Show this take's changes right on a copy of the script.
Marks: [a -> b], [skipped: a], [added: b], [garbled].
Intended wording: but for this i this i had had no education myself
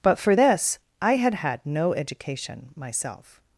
but for this i [skipped: this i] had had no education myself